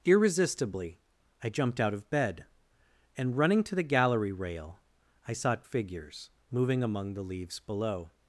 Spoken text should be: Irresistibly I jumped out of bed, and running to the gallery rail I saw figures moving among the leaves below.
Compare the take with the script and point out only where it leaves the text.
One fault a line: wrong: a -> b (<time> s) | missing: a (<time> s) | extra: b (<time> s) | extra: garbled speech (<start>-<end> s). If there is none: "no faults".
no faults